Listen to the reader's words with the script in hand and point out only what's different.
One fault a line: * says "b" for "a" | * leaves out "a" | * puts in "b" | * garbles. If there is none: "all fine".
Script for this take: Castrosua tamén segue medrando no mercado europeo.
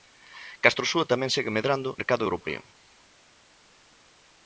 * leaves out "no"